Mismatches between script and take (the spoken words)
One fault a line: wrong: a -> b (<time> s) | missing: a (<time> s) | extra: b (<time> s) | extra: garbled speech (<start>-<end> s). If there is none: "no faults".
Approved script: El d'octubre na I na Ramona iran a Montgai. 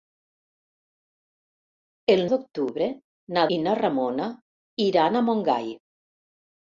no faults